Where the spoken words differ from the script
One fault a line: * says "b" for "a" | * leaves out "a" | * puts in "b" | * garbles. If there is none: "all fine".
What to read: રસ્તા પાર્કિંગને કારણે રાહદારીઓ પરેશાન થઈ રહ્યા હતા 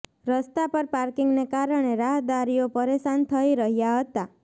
* puts in "પર"